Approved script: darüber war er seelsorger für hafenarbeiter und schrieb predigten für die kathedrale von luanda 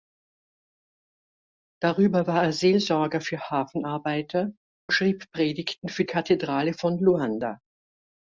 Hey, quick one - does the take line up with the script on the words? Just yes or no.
no